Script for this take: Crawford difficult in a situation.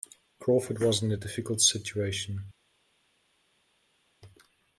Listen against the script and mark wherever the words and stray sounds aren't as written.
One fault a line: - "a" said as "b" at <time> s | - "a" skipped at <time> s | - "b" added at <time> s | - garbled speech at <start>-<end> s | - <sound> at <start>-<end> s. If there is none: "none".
- "difficult" said as "was" at 0.8 s
- "difficult" added at 1.2 s